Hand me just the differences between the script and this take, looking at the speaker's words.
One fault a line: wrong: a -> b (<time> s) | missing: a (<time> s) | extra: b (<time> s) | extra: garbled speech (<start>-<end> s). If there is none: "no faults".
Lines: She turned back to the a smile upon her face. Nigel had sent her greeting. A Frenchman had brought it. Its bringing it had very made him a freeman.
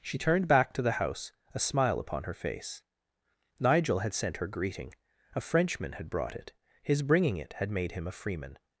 extra: house (0.9 s)
wrong: Its -> His (6.8 s)
missing: very (7.7 s)